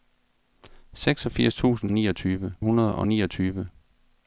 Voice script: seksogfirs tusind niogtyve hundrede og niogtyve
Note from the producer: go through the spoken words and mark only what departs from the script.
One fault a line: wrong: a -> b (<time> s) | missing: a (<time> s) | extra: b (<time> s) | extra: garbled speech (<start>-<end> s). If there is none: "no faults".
no faults